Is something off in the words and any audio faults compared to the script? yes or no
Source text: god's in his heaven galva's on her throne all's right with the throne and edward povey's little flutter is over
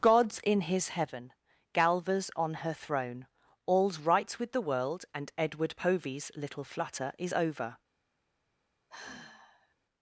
yes